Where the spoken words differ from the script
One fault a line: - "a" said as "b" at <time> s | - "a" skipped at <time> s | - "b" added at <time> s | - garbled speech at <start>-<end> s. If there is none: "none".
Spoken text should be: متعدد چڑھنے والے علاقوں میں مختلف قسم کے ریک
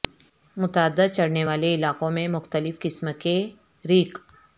none